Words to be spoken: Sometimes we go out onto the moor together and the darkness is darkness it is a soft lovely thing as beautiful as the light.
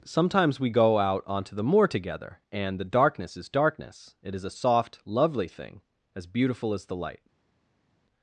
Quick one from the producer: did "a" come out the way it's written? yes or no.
yes